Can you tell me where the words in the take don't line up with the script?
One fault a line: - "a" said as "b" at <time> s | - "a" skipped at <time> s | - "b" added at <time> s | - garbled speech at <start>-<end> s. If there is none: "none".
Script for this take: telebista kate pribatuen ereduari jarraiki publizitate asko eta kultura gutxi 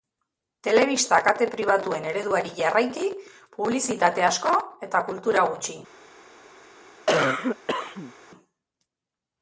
none